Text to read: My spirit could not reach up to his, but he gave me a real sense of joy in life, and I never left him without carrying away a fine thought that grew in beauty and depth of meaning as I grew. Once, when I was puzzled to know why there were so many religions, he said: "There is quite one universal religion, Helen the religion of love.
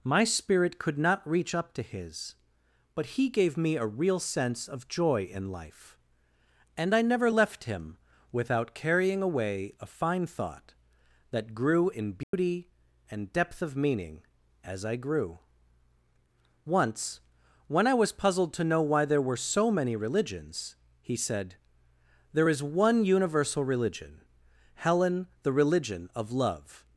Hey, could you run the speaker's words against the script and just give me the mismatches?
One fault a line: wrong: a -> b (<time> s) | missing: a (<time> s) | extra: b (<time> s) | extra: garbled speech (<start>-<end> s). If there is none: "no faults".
missing: quite (22.6 s)